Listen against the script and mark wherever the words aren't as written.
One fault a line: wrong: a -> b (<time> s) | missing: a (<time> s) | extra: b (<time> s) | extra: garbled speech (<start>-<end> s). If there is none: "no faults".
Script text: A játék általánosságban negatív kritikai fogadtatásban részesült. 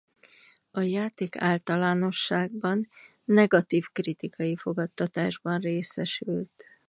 no faults